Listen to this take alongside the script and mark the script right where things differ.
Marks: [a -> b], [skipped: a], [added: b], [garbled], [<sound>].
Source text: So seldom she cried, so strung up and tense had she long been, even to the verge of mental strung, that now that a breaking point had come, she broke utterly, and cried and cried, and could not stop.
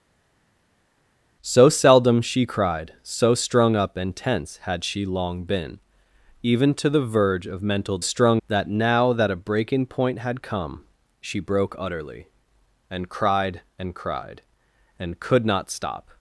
So seldom she cried, so strung up and tense had she long been, even to the verge of mental strung, that now that a breaking point had come, she broke utterly, and cried and cried, and could not stop.